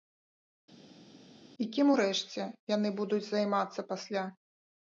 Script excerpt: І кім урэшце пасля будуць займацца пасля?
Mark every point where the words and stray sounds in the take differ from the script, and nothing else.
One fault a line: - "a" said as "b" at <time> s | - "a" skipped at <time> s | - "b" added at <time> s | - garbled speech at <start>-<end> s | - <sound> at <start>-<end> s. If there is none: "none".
- "пасля" said as "яны" at 2.8 s